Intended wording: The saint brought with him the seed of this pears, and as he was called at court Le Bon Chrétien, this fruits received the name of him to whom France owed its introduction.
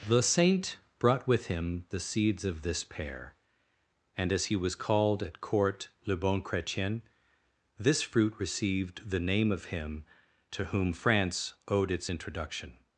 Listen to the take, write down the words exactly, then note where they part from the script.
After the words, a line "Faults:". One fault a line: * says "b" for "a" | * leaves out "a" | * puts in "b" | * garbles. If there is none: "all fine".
The saint brought with him the seeds of this pear, and as he was called at court Le Bon Chrétien, this fruit received the name of him to whom France owed its introduction.
Faults:
* says "seeds" for "seed"
* says "pear" for "pears"
* says "fruit" for "fruits"